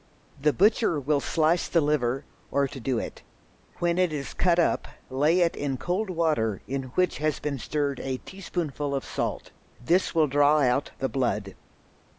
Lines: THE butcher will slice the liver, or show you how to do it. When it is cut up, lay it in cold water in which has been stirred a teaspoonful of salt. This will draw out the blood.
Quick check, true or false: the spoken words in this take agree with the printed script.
false